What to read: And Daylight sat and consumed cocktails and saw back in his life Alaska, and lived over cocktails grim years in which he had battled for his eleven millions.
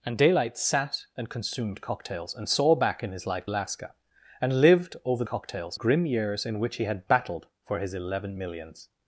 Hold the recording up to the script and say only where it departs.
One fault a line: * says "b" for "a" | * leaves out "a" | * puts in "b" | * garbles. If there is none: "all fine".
all fine